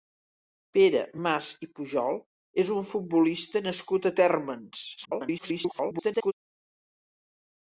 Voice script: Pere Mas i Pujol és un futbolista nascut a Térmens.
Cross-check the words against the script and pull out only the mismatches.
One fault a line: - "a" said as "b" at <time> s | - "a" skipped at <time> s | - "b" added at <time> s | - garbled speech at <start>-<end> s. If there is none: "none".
- garbled speech at 5.0-6.3 s